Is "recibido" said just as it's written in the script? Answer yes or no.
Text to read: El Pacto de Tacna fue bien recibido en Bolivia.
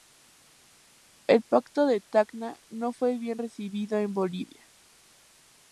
yes